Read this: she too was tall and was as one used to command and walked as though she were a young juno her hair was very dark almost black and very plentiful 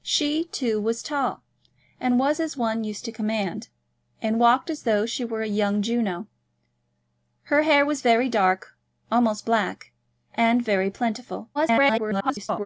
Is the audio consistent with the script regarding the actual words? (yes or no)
no